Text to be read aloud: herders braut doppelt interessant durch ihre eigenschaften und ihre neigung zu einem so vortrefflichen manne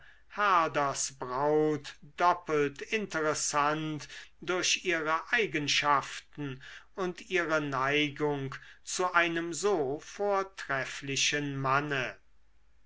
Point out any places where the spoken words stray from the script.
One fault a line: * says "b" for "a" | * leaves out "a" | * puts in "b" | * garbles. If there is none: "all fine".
all fine